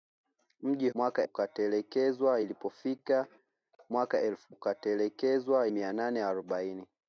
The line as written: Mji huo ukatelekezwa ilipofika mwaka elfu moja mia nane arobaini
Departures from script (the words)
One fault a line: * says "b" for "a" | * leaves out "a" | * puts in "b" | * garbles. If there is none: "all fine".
* says "mwaka" for "huo"
* says "ukatelekezwa" for "moja"